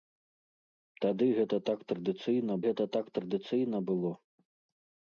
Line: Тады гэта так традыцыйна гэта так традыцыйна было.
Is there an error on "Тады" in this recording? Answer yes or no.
no